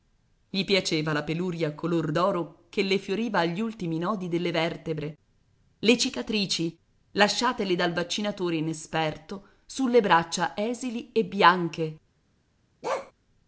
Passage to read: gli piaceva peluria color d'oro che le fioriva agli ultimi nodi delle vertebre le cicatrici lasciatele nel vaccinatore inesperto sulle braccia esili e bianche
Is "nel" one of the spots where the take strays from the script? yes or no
yes